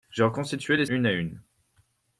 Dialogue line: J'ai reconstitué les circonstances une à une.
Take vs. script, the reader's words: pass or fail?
fail